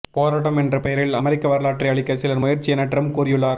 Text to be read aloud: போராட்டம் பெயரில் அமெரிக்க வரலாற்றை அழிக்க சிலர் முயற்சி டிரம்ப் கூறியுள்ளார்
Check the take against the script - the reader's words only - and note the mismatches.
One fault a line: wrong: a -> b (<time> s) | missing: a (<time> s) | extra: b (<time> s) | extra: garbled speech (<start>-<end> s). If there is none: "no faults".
extra: என்ற (0.6 s)
extra: என (2.7 s)